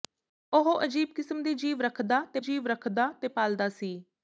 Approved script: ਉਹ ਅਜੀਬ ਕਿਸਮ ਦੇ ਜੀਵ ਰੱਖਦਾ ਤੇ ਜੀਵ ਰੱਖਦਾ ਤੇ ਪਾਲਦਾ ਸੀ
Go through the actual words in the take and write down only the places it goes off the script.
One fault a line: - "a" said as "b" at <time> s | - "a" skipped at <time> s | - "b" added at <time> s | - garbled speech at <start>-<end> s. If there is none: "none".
none